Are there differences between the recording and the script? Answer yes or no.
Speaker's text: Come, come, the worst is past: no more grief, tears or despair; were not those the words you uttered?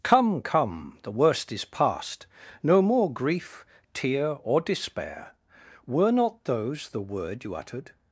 yes